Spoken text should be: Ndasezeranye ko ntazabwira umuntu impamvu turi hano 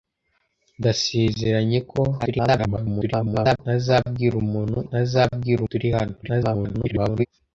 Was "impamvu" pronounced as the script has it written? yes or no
no